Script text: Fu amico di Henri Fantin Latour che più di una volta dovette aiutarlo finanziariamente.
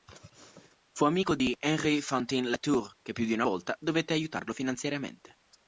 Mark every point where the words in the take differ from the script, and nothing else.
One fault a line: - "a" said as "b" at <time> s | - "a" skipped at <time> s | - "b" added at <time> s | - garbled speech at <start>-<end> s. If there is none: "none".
none